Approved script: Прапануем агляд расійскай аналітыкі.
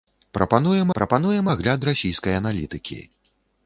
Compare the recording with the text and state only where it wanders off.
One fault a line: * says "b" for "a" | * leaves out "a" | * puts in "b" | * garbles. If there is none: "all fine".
* puts in "прапануем"